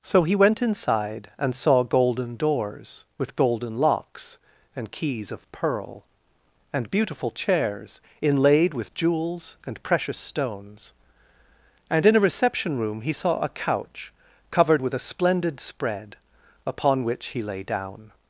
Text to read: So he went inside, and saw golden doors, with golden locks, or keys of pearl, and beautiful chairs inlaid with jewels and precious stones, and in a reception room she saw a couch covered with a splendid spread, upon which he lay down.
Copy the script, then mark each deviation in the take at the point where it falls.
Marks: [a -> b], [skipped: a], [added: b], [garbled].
So he went inside, and saw golden doors, with golden locks, [or -> and] keys of pearl, and beautiful chairs inlaid with jewels and precious stones, and in a reception room [she -> he] saw a couch covered with a splendid spread, upon which he lay down.